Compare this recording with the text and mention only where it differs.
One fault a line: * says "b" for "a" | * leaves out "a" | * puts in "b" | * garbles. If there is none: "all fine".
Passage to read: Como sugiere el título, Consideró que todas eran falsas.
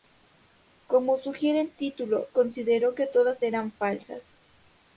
all fine